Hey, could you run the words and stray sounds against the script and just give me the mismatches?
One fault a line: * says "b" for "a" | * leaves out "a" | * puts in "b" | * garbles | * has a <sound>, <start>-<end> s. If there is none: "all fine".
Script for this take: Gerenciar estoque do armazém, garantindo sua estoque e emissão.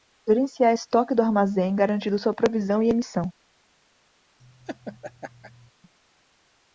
* says "provisão" for "estoque"
* has a laugh, 4.4-5.7 s